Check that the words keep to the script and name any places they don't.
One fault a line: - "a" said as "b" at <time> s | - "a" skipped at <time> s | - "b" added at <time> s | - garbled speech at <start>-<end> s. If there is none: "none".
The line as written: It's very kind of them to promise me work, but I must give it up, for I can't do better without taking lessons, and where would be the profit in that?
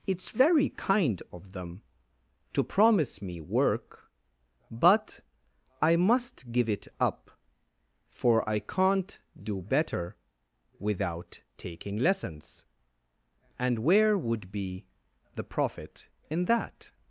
none